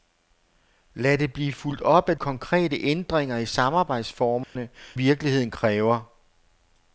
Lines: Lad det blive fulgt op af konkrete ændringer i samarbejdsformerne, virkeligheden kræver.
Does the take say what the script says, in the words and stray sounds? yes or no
no